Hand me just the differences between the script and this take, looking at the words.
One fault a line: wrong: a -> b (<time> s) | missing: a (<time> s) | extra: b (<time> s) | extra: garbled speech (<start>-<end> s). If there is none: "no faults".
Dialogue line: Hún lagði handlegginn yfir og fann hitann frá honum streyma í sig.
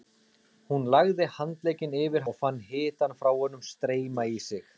no faults